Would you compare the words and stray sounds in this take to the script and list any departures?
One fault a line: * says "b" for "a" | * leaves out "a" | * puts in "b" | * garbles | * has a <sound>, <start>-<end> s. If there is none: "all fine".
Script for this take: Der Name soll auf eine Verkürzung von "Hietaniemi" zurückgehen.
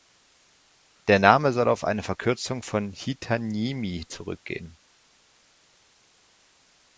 all fine